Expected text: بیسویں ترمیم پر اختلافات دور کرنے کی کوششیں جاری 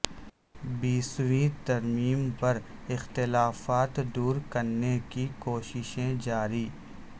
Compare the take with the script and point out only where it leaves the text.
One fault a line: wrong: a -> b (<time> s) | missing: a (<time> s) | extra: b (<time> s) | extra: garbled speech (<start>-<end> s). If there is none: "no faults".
no faults